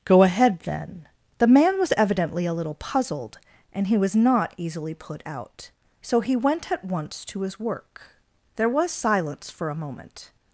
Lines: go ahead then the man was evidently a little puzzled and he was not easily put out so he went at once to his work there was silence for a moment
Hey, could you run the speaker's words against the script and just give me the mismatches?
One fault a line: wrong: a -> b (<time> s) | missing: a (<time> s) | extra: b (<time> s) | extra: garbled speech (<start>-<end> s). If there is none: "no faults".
no faults